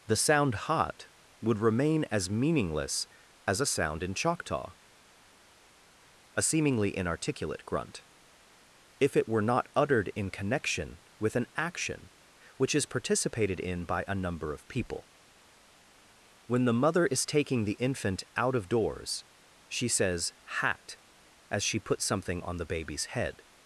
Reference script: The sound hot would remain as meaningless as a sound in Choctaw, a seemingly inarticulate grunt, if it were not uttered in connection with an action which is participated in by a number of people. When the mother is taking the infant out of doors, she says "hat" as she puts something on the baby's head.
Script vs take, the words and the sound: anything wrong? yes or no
no